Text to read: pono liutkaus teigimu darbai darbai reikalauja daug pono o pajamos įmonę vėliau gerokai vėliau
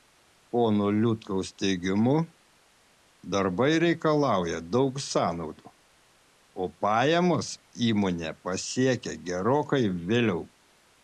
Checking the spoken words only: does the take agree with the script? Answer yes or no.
no